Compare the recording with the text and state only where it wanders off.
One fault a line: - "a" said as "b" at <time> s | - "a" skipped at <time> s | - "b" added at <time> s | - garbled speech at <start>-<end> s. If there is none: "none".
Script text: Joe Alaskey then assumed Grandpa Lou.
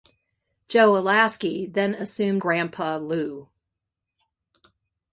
none